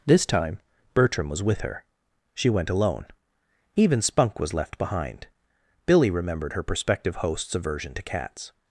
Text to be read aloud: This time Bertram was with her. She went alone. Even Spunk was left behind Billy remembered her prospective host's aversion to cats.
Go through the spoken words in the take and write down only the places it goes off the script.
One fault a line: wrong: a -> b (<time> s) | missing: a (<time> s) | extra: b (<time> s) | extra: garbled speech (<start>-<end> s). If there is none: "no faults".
no faults